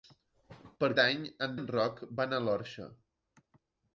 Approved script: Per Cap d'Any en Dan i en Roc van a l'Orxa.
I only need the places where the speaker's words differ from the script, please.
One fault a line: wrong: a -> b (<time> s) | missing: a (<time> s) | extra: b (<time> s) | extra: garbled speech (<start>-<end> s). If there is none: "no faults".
missing: Cap (0.9 s)
missing: Dan (1.6 s)